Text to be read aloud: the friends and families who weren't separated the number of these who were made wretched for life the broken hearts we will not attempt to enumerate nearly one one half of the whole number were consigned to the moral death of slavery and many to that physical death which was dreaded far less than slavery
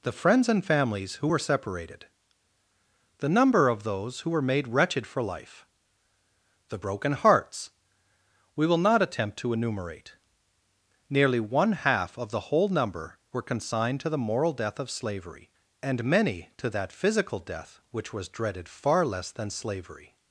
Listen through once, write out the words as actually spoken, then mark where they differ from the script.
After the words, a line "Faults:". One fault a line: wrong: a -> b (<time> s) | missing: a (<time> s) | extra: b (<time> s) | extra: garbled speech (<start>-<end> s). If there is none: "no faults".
the friends and families who were separated the number of those who were made wretched for life the broken hearts we will not attempt to enumerate nearly one half of the whole number were consigned to the moral death of slavery and many to that physical death which was dreaded far less than slavery
Faults:
wrong: weren't -> were (1.2 s)
wrong: these -> those (3.8 s)
missing: one (11.7 s)